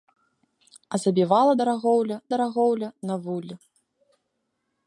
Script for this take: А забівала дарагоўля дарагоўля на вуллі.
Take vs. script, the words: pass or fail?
pass